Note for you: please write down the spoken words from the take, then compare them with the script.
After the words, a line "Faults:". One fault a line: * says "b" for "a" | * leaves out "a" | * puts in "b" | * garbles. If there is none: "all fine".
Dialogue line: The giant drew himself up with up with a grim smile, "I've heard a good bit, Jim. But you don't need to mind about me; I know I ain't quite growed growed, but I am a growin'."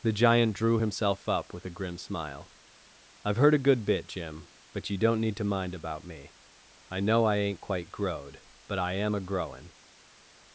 The giant drew himself up with a grim smile, "I've heard a good bit, Jim. But you don't need to mind about me; I know I ain't quite growed, but I am a growin'."
Faults:
* leaves out "up with"
* leaves out "growed"